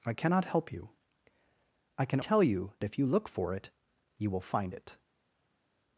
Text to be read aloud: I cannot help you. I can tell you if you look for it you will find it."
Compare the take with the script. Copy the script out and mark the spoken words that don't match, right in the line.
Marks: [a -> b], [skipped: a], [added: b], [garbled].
I cannot help you. I can tell you if you look for it you will find it."